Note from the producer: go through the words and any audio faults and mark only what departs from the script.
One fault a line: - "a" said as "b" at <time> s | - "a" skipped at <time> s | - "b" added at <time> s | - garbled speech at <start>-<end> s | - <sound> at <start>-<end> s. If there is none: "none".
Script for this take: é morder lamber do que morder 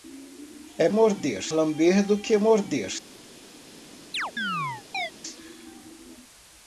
- chirp at 4.1-5.1 s